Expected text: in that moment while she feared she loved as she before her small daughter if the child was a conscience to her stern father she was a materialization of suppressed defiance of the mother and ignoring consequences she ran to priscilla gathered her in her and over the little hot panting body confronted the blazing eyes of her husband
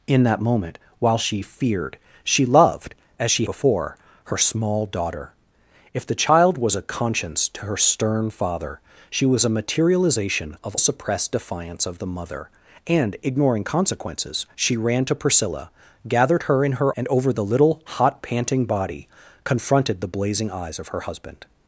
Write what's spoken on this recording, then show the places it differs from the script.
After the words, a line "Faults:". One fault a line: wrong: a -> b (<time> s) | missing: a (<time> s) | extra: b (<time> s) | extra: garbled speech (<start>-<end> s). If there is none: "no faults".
in that moment while she feared she loved as she before her small daughter if the child was a conscience to her stern father she was a materialization of suppressed defiance of the mother and ignoring consequences she ran to priscilla gathered her in her and over the little hot panting body confronted the blazing eyes of her husband
Faults:
no faults